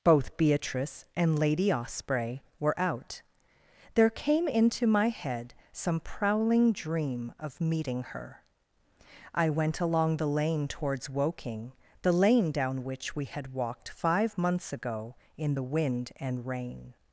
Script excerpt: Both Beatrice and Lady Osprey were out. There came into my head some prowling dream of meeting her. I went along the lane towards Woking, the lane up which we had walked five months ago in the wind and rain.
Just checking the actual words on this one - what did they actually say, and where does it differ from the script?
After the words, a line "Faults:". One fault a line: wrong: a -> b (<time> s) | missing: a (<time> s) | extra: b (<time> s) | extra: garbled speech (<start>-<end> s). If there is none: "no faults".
Both Beatrice and Lady Osprey were out. There came into my head some prowling dream of meeting her. I went along the lane towards Woking, the lane down which we had walked five months ago in the wind and rain.
Faults:
wrong: up -> down (12.5 s)